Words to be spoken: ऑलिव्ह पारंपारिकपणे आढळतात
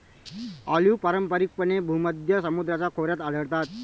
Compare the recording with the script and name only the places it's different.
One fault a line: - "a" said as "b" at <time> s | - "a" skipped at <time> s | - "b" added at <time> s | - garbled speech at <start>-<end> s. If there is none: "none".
- "भूमध्य समुद्राच्या खोऱ्यात" added at 1.8 s